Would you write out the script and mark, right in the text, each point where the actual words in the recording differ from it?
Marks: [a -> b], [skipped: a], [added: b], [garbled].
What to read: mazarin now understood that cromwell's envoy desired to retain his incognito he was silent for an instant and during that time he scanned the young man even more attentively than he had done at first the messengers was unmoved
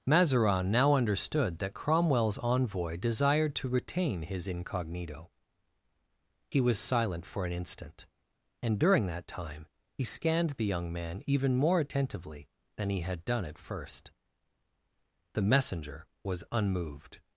mazarin now understood that cromwell's envoy desired to retain his incognito he was silent for an instant and during that time he scanned the young man even more attentively than he had done at first the [messengers -> messenger] was unmoved